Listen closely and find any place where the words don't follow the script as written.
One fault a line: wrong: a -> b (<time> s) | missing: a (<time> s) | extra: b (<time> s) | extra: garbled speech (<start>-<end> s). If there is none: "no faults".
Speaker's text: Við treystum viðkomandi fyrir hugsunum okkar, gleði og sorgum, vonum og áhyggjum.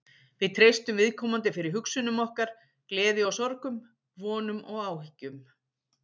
no faults